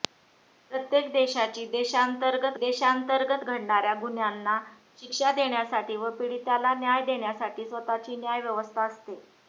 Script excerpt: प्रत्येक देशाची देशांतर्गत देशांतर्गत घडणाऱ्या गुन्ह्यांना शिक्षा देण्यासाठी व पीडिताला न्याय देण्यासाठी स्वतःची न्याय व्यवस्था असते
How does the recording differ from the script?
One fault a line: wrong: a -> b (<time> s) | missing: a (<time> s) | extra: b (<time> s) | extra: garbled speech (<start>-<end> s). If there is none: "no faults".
no faults